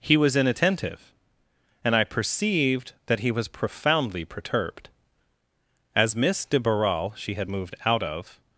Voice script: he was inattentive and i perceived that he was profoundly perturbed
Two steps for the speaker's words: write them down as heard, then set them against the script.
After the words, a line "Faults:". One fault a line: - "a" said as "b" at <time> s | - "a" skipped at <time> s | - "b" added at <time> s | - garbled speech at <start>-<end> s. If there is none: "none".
he was inattentive and i perceived that he was profoundly perturbed as miss de barral she had moved out of
Faults:
- "as miss de barral she had moved out of" added at 6.0 s